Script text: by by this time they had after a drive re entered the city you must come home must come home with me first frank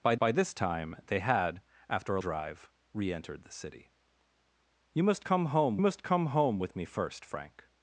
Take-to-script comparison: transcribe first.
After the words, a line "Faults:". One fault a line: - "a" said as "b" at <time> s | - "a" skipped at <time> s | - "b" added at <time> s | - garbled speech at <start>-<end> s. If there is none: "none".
by by this time they had after a drive re entered the city you must come home must come home with me first frank
Faults:
none